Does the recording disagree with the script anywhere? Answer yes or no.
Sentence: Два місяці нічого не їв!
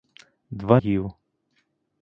yes